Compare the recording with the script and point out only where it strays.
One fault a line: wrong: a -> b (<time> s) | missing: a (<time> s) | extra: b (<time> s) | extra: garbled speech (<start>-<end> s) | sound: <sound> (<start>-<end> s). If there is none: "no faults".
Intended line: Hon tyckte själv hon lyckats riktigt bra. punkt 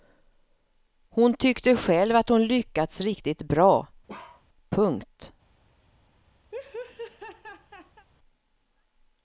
extra: att (2.1 s)
sound: bark (4.1-4.4 s)
sound: laugh (6.5-8.1 s)